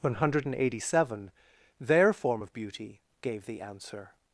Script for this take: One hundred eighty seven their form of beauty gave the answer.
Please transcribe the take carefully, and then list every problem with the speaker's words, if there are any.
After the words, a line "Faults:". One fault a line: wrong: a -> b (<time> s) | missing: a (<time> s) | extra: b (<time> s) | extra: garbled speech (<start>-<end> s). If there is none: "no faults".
One hundred eighty seven their form of beauty gave the answer.
Faults:
no faults